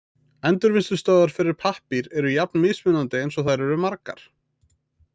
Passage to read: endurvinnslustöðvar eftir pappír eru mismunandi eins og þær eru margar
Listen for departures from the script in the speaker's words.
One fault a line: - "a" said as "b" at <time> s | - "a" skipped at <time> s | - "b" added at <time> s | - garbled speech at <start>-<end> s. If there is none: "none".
- "eftir" said as "fyrir" at 1.4 s
- "jafn" added at 2.4 s